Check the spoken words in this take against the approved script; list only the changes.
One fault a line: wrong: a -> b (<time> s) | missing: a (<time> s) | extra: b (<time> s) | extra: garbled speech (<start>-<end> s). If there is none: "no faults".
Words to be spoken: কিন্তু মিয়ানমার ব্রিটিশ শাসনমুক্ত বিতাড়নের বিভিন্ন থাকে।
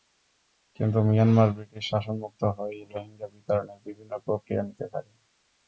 extra: হয়েই রোহিঙ্গা (2.6 s)
extra: প্রক্রিয়া নিতে (4.2 s)